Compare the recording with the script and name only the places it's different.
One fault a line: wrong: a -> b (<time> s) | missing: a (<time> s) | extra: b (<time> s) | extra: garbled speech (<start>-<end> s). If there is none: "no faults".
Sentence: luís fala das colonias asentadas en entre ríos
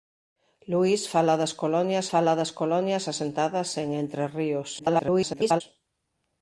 extra: fala das colonias (2.1 s)
extra: garbled speech (4.8-5.6 s)